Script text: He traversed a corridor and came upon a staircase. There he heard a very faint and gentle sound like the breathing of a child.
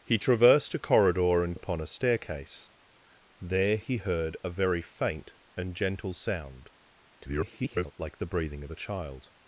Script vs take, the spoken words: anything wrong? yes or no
yes